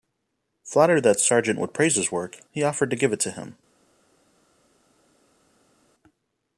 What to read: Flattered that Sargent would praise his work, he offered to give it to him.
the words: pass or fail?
pass